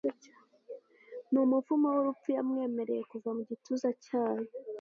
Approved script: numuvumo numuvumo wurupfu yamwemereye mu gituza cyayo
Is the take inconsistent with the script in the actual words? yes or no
yes